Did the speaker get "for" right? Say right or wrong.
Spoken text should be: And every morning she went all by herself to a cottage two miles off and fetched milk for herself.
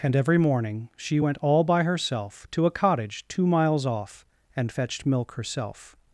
wrong